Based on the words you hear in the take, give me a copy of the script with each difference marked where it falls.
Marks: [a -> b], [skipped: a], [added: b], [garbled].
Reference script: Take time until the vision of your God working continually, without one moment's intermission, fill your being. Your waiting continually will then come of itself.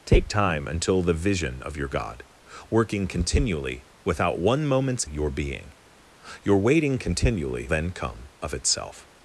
Take time until the vision of your God working continually, without one moment's [skipped: intermission, fill] your being. Your waiting continually [skipped: will] then come of itself.